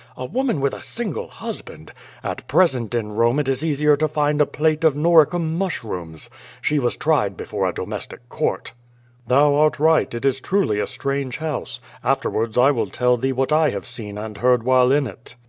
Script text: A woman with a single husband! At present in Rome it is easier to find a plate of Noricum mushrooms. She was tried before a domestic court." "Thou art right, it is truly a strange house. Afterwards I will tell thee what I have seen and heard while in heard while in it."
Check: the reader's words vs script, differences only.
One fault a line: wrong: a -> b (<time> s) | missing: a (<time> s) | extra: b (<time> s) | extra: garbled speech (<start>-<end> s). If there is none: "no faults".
missing: heard while in (15.1 s)